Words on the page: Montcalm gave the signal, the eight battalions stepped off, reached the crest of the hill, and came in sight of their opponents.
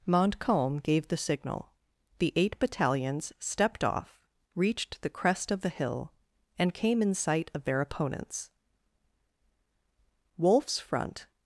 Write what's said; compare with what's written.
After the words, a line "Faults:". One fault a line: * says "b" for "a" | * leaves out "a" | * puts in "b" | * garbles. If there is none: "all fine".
Montcalm gave the signal, the eight battalions stepped off, reached the crest of the hill, and came in sight of their opponents. Wolfe's front
Faults:
* puts in "Wolfe's front"